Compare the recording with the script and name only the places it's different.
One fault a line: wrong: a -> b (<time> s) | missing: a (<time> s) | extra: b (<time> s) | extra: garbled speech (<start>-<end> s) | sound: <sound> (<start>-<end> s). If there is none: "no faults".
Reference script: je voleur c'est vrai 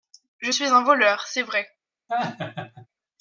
extra: suis un (0.5 s)
sound: laugh (2.1-2.9 s)